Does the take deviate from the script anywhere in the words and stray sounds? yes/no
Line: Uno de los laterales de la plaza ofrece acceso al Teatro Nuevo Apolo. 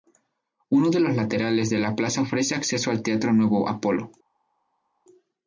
no